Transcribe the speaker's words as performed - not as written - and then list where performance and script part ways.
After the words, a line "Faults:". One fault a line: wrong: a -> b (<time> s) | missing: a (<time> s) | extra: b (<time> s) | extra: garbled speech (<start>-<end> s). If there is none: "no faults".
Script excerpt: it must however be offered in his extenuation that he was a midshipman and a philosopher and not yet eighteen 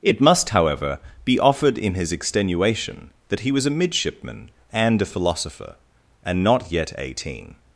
it must however be offered in his extenuation that he was a midshipman and a philosopher and not yet eighteen
Faults:
no faults